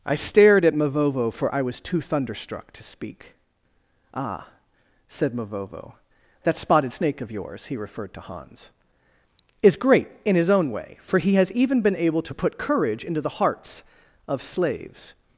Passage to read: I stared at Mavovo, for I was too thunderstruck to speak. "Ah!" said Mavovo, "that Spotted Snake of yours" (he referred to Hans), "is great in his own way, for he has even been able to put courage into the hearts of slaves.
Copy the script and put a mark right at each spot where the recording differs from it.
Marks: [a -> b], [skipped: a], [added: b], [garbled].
I stared at Mavovo, for I was too thunderstruck to speak. "Ah!" said Mavovo, "that Spotted Snake of yours" (he referred to Hans), "is great in his own way, for he has even been able to put courage into the hearts of slaves.